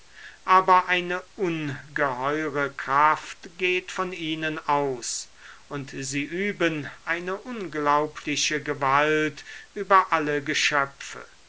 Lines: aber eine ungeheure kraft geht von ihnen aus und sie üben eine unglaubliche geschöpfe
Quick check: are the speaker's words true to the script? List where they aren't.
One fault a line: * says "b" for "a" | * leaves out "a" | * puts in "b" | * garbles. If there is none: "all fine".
* puts in "gewalt über alle"